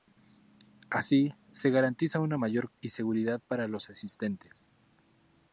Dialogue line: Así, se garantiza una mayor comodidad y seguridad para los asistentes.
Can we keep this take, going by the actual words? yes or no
no